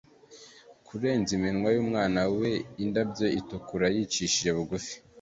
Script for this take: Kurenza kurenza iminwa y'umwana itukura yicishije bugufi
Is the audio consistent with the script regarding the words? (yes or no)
no